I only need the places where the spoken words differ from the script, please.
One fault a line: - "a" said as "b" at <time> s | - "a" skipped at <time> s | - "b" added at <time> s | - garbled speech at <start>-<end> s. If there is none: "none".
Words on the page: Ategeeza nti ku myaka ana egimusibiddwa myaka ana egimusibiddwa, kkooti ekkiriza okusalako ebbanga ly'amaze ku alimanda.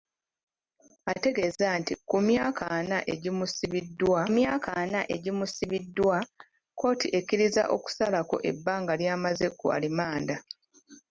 none